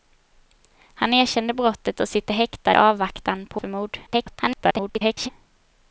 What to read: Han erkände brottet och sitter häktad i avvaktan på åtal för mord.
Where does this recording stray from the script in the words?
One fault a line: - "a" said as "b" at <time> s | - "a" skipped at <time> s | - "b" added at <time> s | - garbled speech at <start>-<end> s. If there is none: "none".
- "i" skipped at 2.8 s
- "åtal" skipped at 3.6 s
- garbled speech at 4.1-5.3 s